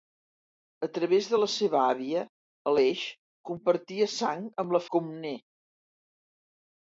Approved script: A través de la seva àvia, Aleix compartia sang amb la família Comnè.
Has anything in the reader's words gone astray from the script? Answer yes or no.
yes